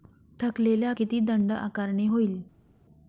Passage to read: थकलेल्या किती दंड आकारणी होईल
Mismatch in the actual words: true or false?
false